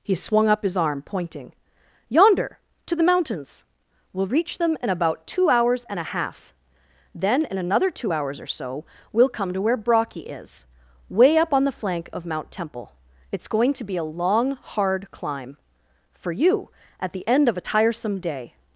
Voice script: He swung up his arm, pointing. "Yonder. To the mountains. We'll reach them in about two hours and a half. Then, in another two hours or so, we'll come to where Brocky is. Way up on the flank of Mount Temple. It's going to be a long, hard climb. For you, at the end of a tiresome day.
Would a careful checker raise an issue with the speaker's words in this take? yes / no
no